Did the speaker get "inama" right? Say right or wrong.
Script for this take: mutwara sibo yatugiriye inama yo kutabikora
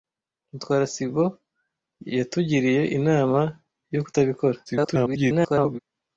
right